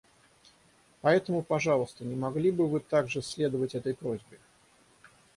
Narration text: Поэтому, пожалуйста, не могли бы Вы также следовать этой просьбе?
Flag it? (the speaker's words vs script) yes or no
no